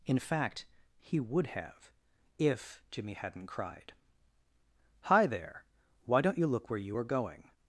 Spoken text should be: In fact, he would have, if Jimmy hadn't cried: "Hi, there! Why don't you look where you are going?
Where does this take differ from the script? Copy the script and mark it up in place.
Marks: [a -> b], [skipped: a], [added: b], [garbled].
In fact, he would have, if Jimmy hadn't cried: "Hi, there! Why don't you look where you are going?